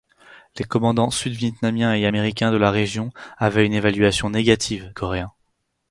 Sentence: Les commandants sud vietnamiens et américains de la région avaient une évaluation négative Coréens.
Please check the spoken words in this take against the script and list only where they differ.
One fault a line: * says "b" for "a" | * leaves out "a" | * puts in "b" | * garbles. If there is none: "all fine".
all fine